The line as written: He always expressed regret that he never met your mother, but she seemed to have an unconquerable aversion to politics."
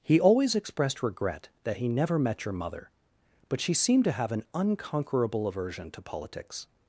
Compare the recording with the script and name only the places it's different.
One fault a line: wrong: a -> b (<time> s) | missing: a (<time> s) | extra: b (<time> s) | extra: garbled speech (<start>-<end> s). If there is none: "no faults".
no faults